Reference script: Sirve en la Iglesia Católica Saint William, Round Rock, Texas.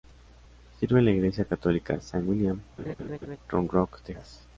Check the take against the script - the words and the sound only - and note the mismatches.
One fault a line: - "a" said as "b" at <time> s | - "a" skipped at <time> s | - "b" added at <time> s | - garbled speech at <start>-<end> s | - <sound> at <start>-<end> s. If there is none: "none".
- laugh at 2.8-3.4 s